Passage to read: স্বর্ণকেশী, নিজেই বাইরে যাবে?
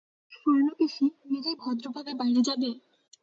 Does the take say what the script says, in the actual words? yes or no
no